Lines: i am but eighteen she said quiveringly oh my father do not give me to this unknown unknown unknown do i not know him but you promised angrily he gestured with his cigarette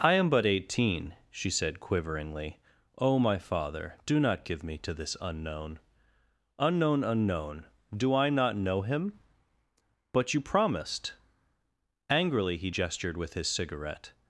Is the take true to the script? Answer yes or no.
yes